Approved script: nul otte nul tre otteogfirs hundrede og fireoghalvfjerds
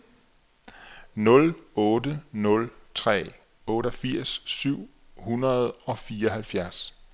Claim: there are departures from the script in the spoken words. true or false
true